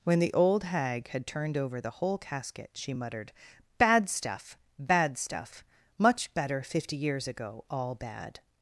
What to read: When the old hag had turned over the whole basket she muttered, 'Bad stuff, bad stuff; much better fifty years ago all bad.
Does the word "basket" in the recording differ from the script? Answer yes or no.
yes